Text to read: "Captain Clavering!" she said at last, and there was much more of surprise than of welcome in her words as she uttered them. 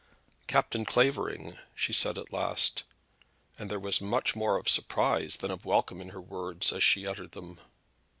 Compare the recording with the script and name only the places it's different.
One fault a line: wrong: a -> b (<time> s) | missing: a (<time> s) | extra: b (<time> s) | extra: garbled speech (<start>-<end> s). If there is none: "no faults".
no faults